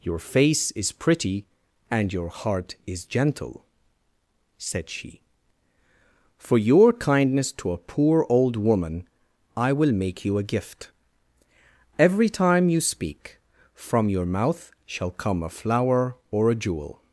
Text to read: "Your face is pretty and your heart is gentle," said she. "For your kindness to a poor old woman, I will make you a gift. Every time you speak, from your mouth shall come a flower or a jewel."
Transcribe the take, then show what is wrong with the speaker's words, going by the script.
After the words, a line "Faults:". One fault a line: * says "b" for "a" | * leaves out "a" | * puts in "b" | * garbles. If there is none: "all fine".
"Your face is pretty and your heart is gentle," said she. "For your kindness to a poor old woman, I will make you a gift. Every time you speak, from your mouth shall come a flower or a jewel."
Faults:
all fine